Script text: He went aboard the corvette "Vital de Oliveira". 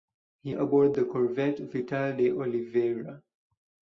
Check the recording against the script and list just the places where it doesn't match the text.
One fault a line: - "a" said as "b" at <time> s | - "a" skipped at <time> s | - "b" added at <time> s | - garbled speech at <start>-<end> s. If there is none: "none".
- "went" skipped at 0.6 s